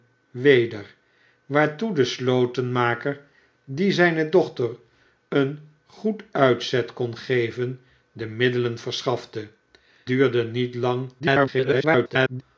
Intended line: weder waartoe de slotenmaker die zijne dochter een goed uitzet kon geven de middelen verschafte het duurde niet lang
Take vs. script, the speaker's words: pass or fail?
fail